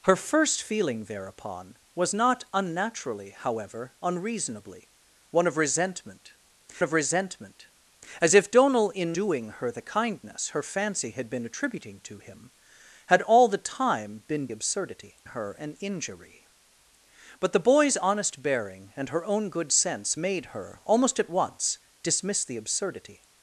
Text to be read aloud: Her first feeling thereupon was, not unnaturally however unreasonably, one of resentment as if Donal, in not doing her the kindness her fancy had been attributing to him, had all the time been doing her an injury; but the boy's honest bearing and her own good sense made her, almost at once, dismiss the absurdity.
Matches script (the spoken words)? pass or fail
fail